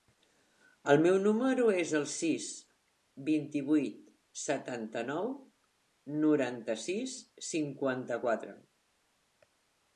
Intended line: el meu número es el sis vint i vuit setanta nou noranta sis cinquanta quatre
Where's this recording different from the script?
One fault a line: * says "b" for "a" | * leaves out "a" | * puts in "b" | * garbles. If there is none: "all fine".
all fine